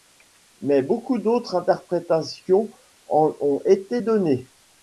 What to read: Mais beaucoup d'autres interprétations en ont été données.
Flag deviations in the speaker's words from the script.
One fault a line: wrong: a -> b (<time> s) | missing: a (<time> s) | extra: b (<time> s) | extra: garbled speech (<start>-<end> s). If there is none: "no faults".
no faults